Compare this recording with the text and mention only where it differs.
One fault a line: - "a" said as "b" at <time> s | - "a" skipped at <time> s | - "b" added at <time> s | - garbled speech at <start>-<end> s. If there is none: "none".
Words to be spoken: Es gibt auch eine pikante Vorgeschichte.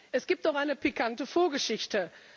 none